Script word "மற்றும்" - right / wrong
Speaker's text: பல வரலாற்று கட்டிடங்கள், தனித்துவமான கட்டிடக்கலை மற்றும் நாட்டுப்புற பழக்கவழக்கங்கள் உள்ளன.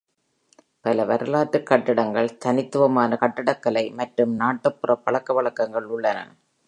right